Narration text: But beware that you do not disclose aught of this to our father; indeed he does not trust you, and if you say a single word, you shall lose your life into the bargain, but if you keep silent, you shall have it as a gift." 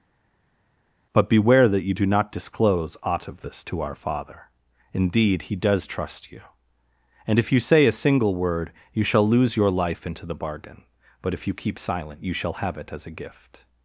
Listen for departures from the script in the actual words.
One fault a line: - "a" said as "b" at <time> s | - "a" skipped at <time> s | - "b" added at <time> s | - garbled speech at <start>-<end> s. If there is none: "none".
- "not" skipped at 5.9 s